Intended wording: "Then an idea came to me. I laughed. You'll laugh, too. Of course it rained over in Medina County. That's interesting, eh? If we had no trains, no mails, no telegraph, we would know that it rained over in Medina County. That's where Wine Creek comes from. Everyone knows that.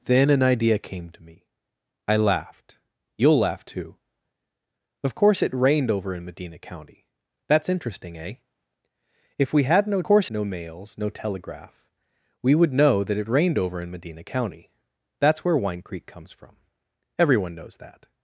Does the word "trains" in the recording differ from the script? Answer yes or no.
yes